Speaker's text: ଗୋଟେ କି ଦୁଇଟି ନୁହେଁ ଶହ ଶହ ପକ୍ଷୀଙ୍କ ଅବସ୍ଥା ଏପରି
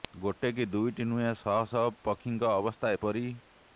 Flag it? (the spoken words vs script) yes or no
no